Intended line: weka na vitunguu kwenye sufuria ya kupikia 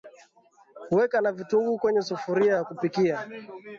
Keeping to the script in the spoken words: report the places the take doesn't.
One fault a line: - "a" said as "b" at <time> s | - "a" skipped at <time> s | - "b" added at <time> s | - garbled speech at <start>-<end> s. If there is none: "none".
none